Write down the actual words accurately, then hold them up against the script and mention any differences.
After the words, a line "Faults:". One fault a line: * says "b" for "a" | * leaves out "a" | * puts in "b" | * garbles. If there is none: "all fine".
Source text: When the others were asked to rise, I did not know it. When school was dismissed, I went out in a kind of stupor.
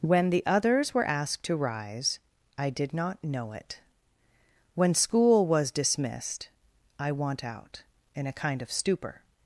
When the others were asked to rise, I did not know it. When school was dismissed, I want out in a kind of stupor.
Faults:
* says "want" for "went"